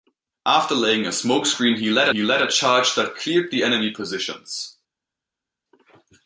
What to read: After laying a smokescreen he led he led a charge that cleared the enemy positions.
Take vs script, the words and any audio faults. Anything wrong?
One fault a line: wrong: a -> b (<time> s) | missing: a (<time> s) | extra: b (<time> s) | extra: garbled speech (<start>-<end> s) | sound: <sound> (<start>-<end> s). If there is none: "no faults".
no faults